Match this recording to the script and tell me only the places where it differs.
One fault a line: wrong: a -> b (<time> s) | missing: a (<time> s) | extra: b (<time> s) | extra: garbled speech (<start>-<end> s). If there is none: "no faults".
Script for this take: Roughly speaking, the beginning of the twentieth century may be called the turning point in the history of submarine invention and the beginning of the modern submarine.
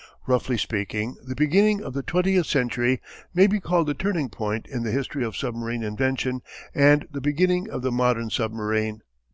no faults